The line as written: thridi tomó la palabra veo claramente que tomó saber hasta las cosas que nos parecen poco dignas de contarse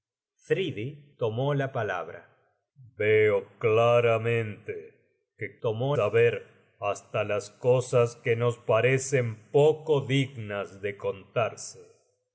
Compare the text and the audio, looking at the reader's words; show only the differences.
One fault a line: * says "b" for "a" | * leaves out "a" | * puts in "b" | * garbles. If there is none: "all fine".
all fine